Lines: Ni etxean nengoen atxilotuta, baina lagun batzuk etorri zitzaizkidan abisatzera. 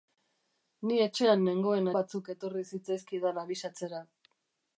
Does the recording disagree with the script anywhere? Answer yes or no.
yes